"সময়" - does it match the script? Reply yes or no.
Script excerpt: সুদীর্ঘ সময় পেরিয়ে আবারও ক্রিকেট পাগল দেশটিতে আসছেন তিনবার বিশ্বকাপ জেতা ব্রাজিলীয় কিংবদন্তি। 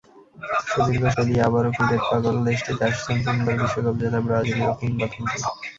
no